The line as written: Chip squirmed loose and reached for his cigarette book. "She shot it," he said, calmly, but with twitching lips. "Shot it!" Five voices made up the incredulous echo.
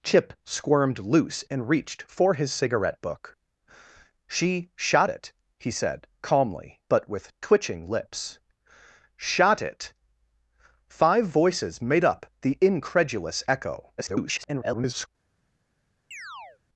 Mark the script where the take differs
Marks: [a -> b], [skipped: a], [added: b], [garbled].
Chip squirmed loose and reached for his cigarette book. "She shot it," he said, calmly, but with twitching lips. "Shot it!" Five voices made up the incredulous echo. [garbled]